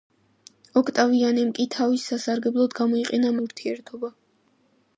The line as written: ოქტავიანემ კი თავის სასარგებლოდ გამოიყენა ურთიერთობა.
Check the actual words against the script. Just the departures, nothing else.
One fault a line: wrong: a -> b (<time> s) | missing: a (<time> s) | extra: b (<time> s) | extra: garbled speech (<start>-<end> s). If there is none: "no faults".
no faults